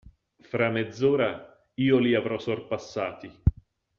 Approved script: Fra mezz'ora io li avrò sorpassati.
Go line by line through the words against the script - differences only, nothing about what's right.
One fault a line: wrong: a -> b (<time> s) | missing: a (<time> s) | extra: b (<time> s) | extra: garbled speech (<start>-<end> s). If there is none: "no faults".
no faults